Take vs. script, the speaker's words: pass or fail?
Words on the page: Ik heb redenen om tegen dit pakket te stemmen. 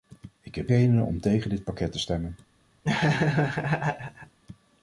pass